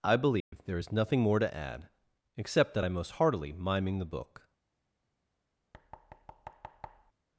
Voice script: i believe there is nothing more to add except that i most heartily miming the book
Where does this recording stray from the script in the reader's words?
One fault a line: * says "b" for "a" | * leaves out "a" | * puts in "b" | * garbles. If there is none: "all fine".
all fine